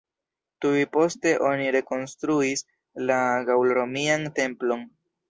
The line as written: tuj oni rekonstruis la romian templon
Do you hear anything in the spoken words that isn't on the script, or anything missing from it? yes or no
yes